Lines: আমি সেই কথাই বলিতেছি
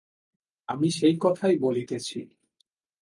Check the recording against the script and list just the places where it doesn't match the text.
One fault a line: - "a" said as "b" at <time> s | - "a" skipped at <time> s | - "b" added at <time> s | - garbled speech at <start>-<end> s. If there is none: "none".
none